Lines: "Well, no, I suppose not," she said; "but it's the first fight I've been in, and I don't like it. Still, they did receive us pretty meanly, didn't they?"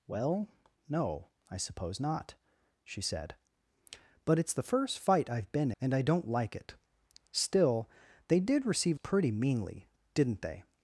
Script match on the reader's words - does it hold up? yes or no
no